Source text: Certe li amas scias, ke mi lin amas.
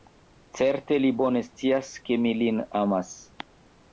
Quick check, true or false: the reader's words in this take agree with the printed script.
false